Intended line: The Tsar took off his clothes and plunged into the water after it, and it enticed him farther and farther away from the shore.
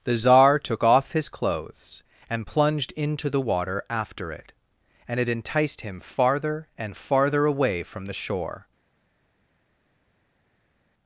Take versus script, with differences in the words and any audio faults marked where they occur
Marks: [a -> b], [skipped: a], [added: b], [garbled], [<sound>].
The Tsar took off his clothes and plunged into the water after it, and it enticed him farther and farther away from the shore.